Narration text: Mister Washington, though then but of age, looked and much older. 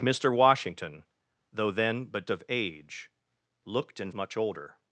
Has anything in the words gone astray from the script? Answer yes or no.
no